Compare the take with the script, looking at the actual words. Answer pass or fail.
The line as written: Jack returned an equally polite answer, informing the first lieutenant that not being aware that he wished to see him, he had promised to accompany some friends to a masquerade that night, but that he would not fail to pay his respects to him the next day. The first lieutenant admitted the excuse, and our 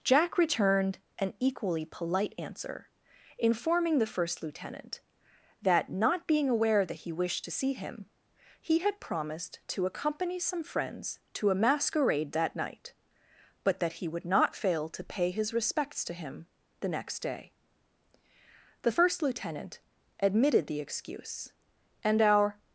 pass